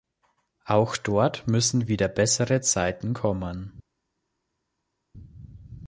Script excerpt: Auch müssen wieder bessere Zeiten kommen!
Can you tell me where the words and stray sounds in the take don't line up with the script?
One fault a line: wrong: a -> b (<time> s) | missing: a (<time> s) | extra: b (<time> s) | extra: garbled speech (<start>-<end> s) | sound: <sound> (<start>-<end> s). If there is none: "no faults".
extra: dort (1.0 s)